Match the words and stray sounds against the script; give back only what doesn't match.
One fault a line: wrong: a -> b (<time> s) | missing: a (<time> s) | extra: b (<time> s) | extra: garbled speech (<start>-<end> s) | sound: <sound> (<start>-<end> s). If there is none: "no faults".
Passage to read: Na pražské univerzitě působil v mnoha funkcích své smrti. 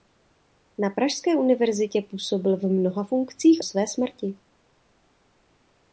no faults